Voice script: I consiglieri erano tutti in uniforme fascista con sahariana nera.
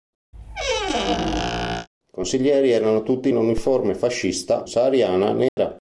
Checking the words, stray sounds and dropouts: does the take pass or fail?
fail